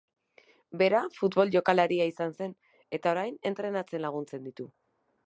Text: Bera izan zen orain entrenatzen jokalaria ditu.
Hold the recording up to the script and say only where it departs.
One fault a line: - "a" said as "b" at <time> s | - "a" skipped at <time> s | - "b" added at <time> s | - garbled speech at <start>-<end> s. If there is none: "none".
- "futbol jokalaria" added at 1.2 s
- "eta" added at 3.0 s
- "jokalaria" said as "laguntzen" at 4.1 s